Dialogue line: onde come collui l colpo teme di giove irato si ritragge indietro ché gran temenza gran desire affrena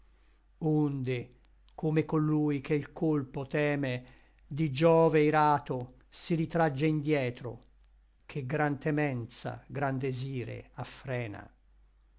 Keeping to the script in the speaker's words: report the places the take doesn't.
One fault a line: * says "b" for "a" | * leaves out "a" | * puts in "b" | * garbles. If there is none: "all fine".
* puts in "che"